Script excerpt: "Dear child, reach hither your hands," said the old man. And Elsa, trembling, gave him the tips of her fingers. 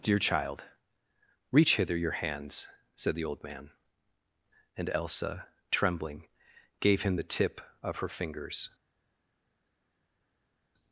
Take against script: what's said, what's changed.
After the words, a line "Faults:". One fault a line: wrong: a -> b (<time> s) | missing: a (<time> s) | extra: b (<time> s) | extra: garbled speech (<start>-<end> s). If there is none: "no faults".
"Dear child, reach hither your hands," said the old man. And Elsa, trembling, gave him the tip of her fingers.
Faults:
wrong: tips -> tip (7.2 s)